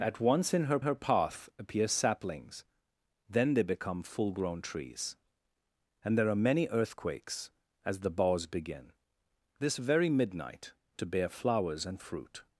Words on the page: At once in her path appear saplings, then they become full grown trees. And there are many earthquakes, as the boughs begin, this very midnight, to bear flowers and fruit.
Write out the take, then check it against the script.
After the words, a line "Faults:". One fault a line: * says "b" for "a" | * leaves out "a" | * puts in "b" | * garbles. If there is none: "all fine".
At once in her her path appear saplings, then they become full grown trees. And there are many earthquakes, as the boughs begin, this very midnight, to bear flowers and fruit.
Faults:
* puts in "her"